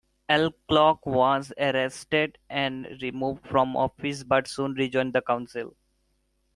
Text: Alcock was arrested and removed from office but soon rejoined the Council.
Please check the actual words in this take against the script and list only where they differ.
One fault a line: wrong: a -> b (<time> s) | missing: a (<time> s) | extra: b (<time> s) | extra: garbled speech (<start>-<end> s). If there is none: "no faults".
no faults